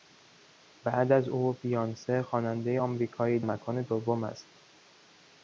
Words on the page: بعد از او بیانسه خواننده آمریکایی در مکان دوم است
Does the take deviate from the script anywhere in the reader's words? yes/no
yes